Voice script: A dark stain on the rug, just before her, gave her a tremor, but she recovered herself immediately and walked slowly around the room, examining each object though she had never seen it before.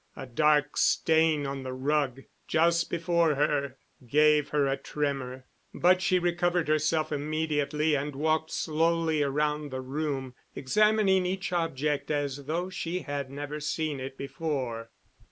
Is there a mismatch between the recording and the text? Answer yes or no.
yes